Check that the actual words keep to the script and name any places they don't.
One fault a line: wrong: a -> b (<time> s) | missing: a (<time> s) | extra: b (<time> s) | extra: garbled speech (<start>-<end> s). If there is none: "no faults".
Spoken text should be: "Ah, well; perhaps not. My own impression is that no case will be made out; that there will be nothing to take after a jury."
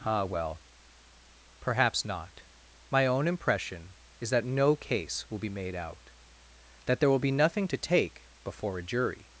wrong: after -> before (8.4 s)